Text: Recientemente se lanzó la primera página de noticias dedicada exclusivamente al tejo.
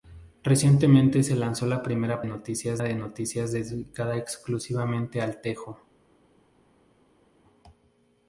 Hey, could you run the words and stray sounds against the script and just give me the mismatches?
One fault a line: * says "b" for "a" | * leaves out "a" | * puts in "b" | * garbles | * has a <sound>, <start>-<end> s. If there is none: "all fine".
* says "noticias" for "página"